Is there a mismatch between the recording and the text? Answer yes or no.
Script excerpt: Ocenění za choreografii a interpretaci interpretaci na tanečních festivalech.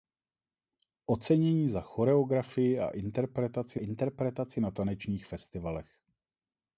no